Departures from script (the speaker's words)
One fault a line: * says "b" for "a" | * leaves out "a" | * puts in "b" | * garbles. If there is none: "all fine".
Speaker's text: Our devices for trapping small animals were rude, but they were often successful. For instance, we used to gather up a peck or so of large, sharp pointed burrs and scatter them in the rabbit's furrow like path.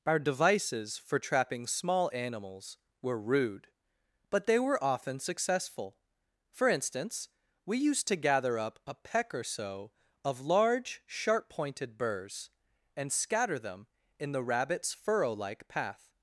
all fine